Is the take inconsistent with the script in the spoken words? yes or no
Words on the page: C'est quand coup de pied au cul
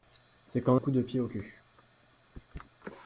no